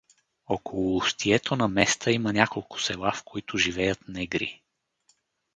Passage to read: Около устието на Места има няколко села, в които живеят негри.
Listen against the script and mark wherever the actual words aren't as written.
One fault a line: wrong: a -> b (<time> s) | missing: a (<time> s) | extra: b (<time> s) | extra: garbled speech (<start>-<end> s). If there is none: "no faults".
no faults